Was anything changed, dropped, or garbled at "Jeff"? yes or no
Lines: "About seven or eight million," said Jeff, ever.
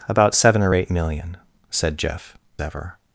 no